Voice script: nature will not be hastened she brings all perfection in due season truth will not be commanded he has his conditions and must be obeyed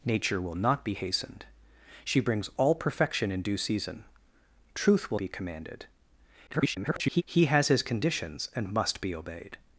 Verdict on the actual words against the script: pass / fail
fail